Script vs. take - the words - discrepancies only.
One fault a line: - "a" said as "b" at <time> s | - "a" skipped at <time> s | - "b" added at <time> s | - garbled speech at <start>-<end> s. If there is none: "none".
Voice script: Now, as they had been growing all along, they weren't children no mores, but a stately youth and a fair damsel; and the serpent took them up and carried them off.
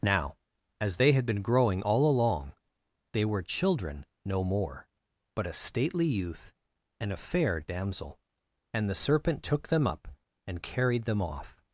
- "weren't" said as "were" at 3.2 s
- "mores" said as "more" at 4.4 s